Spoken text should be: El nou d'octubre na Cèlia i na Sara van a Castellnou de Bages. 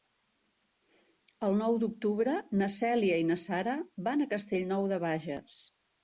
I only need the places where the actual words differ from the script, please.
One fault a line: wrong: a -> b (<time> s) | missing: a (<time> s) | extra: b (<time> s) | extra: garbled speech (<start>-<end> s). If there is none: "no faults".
no faults